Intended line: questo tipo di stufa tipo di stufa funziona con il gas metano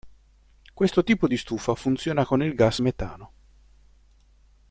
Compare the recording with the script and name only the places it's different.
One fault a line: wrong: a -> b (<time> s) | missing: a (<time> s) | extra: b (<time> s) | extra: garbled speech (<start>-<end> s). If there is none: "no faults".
missing: tipo di stufa (1.7 s)